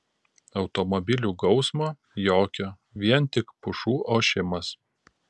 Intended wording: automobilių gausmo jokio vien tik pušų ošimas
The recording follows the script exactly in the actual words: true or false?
true